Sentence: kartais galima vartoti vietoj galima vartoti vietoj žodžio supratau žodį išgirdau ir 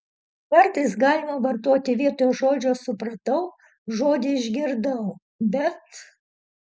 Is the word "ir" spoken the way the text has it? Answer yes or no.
no